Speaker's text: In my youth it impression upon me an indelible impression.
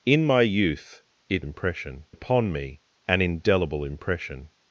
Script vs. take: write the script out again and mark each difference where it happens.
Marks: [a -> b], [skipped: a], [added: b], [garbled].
In my youth it impression upon me an indelible impression.